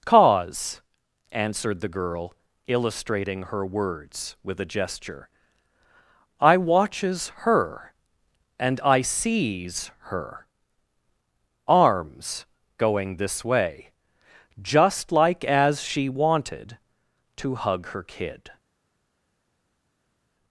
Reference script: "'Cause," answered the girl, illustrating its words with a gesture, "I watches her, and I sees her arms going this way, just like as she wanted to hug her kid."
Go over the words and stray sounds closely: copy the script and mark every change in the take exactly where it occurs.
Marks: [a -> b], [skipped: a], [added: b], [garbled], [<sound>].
"'Cause," answered the girl, illustrating [its -> her] words with a gesture, "I watches her, and I sees her arms going this way, just like as she wanted to hug her kid."